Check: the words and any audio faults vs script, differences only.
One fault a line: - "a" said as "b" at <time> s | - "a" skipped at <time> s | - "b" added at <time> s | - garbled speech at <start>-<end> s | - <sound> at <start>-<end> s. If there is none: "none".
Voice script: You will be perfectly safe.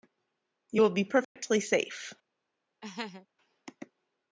- dropout at 1.2-1.4 s
- laugh at 2.8-3.3 s